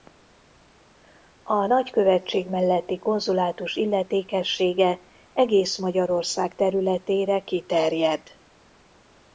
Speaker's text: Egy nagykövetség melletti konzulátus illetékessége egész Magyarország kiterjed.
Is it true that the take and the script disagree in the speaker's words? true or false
true